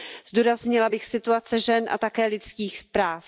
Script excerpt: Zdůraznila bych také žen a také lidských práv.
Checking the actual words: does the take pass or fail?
fail